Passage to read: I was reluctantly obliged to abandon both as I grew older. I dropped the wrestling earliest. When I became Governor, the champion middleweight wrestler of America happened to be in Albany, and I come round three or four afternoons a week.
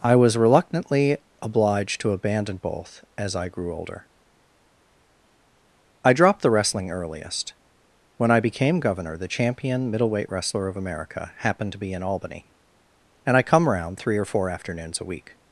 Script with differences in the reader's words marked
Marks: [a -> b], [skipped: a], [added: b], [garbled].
I was reluctantly obliged to abandon both as I grew older. I dropped the wrestling earliest. When I became Governor, the champion middleweight wrestler of America happened to be in Albany, and I come round three or four afternoons a week.